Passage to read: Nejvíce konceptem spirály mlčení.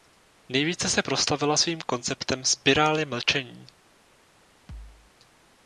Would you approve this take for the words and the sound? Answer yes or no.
no